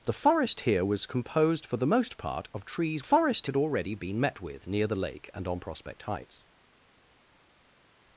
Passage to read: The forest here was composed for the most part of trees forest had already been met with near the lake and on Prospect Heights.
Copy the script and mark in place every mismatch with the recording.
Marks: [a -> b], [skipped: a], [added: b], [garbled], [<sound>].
The forest here was composed for the most part of trees forest had already been met with near the lake and on Prospect Heights.